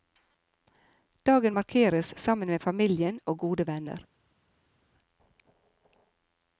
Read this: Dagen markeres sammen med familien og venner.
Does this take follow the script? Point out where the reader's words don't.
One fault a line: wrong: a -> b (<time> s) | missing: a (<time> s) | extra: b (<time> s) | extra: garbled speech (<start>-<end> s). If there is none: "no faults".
extra: gode (3.4 s)